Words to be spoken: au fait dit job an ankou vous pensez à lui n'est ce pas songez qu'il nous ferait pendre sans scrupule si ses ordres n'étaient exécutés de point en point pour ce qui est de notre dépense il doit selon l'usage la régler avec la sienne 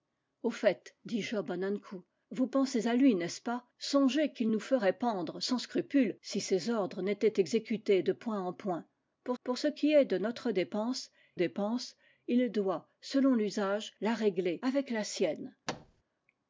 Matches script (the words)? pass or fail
fail